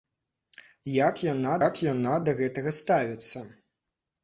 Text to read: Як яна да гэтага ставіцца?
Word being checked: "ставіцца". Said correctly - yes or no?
yes